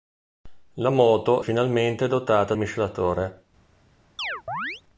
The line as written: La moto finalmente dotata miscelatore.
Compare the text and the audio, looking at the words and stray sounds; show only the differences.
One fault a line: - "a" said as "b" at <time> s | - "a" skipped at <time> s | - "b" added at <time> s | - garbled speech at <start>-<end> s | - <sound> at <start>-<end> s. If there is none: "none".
- chirp at 4.2-4.8 s